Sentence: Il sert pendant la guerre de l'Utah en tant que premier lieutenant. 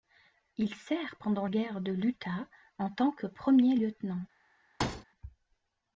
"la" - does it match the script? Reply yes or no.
no